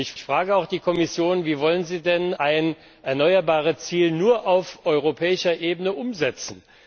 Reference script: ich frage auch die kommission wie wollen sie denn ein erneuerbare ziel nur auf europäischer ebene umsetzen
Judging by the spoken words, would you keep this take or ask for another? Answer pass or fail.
fail